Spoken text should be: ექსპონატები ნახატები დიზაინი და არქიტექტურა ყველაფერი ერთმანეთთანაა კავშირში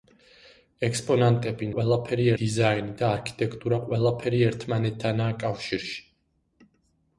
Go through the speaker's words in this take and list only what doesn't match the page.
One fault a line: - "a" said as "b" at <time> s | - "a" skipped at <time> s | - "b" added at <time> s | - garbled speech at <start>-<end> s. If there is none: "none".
- "ნახატები" said as "ყველაფერი" at 1.7 s